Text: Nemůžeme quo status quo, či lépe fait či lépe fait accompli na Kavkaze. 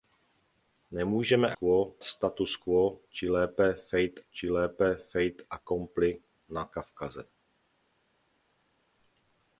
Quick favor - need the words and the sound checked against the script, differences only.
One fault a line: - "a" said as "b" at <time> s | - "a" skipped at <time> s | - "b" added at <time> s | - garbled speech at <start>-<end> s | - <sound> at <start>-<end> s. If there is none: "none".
none